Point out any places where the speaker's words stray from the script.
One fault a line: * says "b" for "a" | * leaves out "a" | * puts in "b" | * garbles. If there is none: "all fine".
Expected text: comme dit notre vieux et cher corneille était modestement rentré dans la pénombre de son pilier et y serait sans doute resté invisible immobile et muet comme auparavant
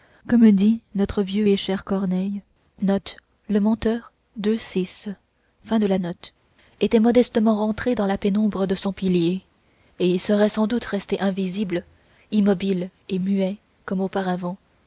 all fine